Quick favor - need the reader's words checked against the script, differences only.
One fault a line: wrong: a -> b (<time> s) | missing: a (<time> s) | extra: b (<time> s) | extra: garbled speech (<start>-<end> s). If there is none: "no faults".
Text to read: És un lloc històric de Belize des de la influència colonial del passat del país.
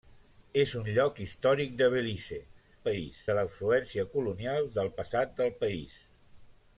wrong: des -> país (2.9 s)